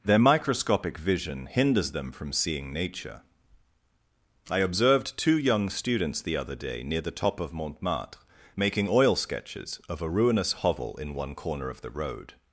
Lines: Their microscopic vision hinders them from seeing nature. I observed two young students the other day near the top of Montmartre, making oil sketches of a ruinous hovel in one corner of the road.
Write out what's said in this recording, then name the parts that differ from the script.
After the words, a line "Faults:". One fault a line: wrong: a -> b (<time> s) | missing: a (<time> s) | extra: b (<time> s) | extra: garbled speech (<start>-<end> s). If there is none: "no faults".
Their microscopic vision hinders them from seeing nature. I observed two young students the other day near the top of Montmartre, making oil sketches of a ruinous hovel in one corner of the road.
Faults:
no faults